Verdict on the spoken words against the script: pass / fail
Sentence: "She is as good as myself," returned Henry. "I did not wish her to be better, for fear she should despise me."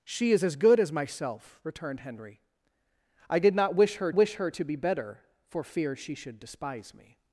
fail